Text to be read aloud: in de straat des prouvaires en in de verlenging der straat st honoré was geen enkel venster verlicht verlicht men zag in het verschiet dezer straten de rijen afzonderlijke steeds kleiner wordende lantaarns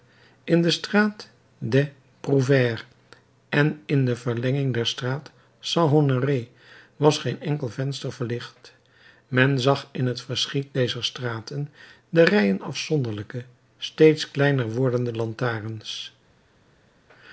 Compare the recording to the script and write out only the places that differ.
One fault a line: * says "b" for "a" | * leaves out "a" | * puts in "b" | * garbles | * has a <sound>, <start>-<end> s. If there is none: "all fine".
* leaves out "verlicht"